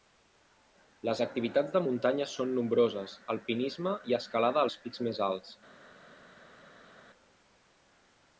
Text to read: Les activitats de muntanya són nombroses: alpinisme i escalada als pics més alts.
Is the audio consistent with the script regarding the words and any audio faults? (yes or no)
yes